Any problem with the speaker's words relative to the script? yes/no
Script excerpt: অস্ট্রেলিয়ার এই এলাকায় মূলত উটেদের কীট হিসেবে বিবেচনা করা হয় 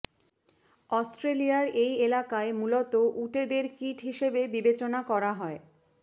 no